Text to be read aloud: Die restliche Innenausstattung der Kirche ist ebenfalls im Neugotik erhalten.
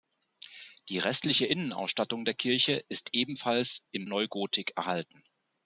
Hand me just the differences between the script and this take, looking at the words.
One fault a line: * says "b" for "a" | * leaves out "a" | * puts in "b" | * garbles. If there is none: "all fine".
all fine